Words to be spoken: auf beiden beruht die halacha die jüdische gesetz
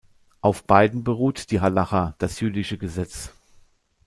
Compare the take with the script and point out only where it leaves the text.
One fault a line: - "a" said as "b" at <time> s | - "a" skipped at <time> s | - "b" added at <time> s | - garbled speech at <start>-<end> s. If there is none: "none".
- "die" said as "das" at 2.2 s